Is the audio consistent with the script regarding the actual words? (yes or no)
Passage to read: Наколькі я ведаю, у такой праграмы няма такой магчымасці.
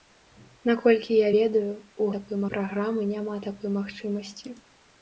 yes